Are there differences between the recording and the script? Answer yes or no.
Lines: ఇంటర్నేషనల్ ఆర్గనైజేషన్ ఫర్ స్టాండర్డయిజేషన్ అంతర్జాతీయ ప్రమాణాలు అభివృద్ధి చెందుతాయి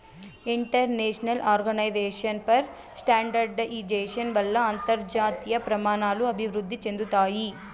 yes